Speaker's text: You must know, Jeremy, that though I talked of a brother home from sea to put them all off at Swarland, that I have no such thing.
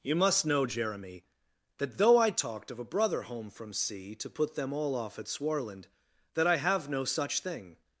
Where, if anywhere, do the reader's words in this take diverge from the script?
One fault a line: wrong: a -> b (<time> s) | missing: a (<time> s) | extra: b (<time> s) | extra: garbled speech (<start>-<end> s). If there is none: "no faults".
no faults